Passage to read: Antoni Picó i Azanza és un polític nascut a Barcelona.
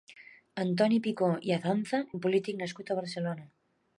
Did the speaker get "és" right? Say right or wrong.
wrong